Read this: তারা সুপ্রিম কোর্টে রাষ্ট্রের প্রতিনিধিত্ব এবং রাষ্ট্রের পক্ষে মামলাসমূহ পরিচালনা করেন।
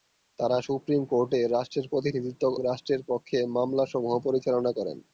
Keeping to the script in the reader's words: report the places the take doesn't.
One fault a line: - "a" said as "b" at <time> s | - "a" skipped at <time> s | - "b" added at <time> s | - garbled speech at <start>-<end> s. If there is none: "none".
- "এবং" skipped at 2.4 s